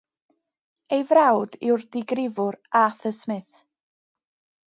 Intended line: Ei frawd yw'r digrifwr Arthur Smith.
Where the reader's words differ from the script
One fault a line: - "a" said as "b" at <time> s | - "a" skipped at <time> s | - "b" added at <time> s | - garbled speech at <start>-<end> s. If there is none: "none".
none